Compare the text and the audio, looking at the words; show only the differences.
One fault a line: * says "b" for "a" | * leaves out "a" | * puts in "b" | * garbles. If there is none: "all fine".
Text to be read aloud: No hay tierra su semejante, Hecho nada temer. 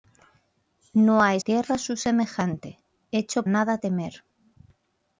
all fine